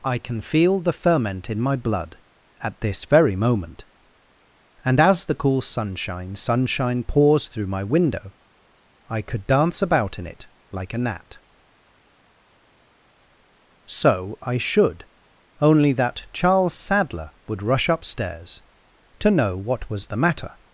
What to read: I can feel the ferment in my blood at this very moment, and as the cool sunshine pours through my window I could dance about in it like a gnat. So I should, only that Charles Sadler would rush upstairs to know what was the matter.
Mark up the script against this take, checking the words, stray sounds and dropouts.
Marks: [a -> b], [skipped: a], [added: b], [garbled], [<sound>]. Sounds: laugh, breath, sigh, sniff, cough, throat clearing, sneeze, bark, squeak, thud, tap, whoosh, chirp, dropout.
I can feel the ferment in my blood at this very moment, and as the cool sunshine [added: sunshine] pours through my window I could dance about in it like a gnat. So I should, only that Charles Sadler would rush upstairs to know what was the matter.